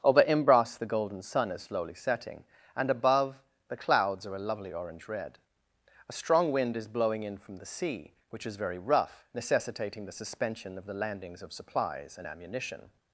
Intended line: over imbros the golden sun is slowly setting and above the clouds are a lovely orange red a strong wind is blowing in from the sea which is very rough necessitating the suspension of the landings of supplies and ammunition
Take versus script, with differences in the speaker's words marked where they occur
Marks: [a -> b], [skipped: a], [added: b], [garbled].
over imbros the golden sun is slowly setting and above the clouds are a lovely orange red a strong wind is blowing in from the sea which is very rough necessitating the suspension of the landings of supplies and ammunition